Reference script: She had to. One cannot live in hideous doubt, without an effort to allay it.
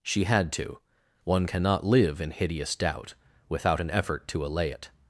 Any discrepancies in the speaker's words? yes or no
no